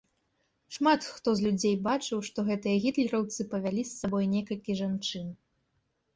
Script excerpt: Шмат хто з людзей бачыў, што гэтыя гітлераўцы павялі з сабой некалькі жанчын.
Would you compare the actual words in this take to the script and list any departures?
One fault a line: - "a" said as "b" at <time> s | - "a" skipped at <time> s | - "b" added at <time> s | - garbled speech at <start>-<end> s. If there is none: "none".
none